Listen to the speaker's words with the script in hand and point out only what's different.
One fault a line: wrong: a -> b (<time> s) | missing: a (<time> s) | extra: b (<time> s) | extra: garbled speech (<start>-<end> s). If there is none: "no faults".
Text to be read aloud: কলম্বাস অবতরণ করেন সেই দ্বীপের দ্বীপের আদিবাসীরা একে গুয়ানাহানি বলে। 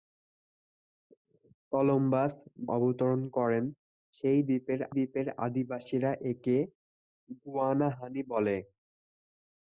no faults